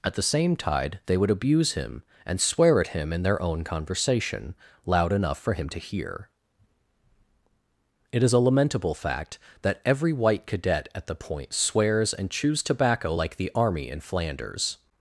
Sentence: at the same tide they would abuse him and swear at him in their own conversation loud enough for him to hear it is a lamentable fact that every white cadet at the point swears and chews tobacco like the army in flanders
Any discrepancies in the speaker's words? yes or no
no